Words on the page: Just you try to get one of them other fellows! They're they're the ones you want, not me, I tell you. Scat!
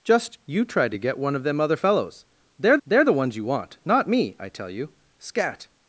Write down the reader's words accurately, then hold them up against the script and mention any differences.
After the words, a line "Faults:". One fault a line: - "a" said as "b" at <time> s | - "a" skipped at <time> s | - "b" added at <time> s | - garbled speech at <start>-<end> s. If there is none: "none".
Just you try to get one of them other fellows! They're they're the ones you want, not me, I tell you. Scat!
Faults:
none